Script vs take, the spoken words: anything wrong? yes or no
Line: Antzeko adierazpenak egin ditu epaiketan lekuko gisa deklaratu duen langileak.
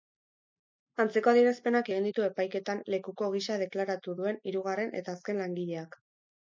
yes